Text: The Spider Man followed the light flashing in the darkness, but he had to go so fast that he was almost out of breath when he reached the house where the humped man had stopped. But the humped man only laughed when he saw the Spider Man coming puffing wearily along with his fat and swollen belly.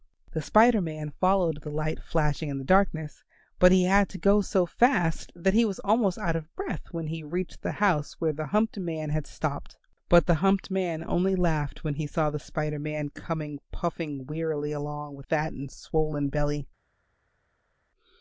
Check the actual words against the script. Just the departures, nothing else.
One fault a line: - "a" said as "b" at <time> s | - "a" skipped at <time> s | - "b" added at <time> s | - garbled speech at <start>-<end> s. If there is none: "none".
- "his" skipped at 15.3 s